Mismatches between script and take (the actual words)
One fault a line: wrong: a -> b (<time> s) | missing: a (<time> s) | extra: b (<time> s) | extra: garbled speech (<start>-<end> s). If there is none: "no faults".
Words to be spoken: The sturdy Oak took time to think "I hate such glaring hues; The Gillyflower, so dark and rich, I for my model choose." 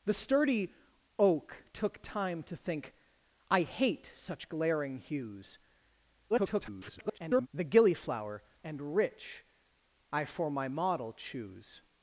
extra: garbled speech (6.3-7.5 s)
missing: so dark (8.4 s)